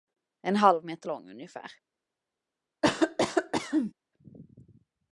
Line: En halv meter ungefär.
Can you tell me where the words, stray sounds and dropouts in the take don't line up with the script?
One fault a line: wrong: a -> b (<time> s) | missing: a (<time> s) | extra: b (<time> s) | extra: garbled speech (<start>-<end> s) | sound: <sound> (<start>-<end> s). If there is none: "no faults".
extra: lång (1.1 s)
sound: cough (2.8-3.9 s)